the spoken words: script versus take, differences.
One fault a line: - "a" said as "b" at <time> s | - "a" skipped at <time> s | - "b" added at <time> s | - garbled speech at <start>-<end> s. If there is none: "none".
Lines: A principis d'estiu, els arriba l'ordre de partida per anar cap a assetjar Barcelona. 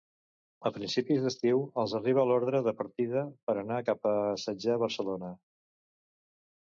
none